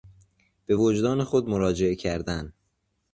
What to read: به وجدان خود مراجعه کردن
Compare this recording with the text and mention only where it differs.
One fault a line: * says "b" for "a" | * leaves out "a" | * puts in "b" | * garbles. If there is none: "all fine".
all fine